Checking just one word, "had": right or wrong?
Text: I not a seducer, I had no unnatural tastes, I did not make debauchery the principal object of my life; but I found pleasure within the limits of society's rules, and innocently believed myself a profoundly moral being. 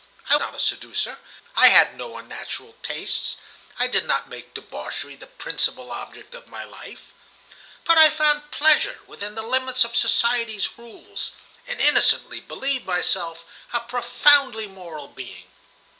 right